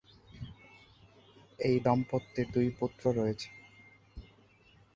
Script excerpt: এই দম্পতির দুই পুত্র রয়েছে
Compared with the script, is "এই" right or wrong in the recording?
right